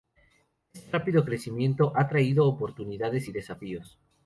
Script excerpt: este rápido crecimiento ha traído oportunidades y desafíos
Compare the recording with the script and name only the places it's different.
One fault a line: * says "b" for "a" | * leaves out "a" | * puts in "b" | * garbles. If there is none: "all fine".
all fine